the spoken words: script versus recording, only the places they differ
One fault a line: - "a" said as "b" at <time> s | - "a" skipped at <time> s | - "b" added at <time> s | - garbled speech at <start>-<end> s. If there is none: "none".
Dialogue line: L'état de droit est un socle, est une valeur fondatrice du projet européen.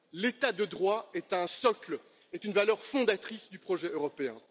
none